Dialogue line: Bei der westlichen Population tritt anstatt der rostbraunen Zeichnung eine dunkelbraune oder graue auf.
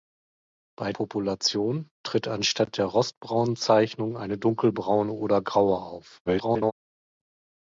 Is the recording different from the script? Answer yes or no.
yes